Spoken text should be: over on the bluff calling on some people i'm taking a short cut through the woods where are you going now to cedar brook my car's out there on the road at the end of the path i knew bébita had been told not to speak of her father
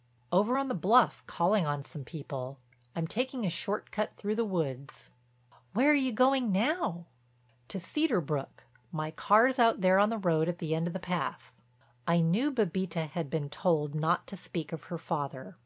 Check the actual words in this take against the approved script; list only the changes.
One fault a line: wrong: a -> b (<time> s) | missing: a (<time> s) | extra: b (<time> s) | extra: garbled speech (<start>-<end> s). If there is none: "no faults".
no faults